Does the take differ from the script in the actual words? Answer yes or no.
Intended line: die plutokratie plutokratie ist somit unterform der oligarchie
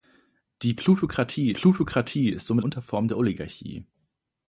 no